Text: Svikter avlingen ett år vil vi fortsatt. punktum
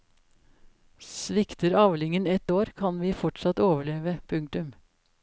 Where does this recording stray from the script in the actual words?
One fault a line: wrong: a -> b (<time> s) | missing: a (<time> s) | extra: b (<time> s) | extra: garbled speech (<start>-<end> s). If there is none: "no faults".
wrong: vil -> kan (2.7 s)
extra: overleve (3.6 s)